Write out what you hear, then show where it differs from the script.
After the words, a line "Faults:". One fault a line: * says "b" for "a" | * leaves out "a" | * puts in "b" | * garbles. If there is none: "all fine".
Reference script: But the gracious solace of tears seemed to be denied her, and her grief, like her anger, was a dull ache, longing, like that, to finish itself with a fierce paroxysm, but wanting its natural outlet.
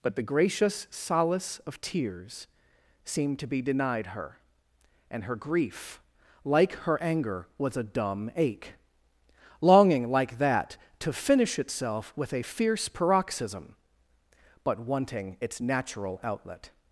But the gracious solace of tears seemed to be denied her, and her grief, like her anger, was a dumb ache, longing, like that, to finish itself with a fierce paroxysm, but wanting its natural outlet.
Faults:
* says "dumb" for "dull"